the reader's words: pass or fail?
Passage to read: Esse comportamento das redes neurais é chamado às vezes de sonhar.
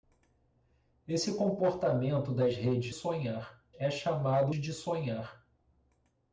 fail